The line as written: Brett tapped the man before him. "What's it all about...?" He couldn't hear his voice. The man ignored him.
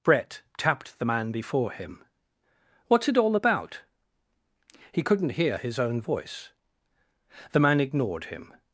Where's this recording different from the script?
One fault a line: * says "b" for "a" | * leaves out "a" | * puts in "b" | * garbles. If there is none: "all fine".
* puts in "own"